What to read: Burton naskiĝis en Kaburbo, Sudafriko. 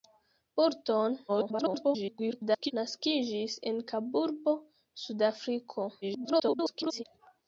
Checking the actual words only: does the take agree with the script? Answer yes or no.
no